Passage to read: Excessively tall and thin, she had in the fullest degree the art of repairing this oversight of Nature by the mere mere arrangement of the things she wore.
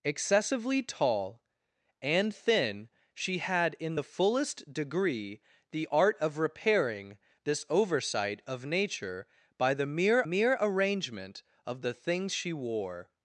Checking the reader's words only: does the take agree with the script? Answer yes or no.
yes